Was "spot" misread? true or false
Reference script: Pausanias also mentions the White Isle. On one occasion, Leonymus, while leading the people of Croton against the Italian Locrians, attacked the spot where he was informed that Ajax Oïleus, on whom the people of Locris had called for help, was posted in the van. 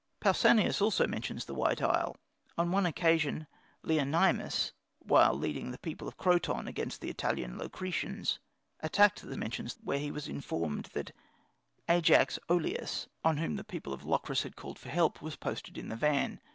true